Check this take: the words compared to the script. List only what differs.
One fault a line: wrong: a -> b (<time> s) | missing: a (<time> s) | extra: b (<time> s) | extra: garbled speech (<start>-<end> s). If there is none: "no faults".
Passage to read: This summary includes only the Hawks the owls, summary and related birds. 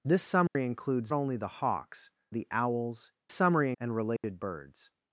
no faults